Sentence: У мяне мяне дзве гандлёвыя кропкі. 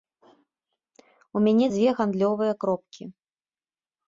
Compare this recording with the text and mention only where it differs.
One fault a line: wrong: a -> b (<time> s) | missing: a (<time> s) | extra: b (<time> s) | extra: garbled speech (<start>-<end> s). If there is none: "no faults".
missing: мяне (1.7 s)